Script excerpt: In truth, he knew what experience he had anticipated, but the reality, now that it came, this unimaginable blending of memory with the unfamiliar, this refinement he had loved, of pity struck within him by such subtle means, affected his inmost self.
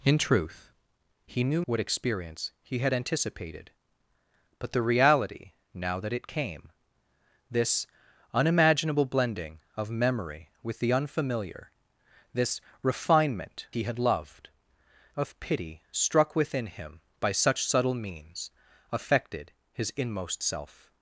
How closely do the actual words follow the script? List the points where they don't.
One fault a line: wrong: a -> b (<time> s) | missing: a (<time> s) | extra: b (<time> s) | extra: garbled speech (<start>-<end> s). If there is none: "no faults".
no faults